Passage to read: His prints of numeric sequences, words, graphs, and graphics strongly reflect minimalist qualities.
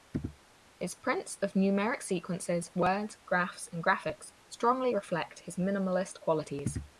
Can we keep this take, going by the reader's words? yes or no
no